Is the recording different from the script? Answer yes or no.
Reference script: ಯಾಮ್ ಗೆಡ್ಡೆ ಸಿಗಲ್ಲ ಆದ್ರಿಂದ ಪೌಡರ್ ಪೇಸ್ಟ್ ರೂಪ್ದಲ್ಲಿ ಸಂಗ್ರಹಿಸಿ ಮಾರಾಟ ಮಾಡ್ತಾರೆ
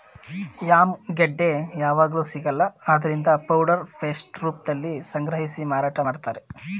yes